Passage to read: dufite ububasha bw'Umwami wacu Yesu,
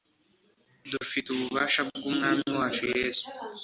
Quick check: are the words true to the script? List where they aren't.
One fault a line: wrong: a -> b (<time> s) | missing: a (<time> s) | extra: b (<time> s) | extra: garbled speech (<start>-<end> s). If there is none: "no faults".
no faults